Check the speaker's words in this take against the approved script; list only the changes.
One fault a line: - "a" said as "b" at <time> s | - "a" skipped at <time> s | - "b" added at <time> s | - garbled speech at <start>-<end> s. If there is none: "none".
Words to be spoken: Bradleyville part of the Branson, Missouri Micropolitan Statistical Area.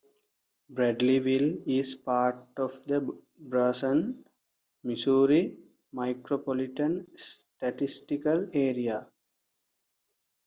- "is" added at 1.7 s